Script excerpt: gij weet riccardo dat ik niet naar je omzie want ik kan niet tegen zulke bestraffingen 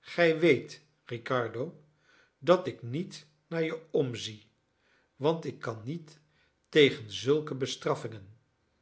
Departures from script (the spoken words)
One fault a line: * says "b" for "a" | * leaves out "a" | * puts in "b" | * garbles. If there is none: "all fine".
all fine